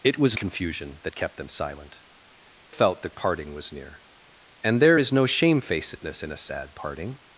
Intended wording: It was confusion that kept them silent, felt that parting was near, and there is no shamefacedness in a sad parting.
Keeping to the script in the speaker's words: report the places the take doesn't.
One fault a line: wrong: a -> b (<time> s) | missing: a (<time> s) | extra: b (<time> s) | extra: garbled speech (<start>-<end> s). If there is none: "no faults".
no faults